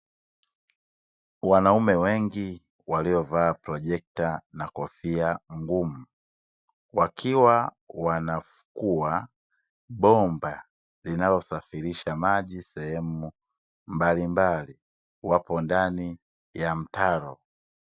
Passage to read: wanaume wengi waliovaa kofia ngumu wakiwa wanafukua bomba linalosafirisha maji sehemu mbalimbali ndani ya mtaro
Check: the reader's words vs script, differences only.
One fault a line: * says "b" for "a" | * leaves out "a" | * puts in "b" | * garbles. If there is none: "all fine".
* puts in "projekta na"
* puts in "wapo"